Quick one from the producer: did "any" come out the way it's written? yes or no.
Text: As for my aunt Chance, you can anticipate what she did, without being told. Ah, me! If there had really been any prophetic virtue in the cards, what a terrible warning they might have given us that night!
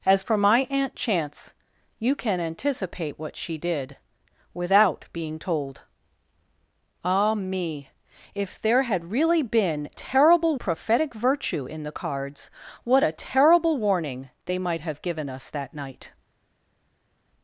no